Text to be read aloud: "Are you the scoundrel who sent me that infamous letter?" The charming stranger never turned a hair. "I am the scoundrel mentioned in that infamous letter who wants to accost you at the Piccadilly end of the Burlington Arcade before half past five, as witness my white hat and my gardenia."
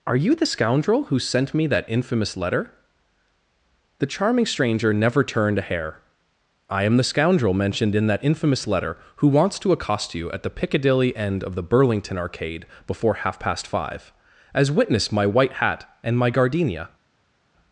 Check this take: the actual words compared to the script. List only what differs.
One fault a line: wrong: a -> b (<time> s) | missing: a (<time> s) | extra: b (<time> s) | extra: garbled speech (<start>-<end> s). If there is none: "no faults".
no faults